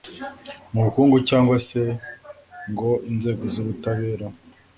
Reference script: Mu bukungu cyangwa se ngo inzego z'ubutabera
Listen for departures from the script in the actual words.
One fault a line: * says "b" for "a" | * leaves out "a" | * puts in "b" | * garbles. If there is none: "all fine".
all fine